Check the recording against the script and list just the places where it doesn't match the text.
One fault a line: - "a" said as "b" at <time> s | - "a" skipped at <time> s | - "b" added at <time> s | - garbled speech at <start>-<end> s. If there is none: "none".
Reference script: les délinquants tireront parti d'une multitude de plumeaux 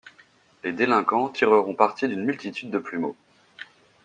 none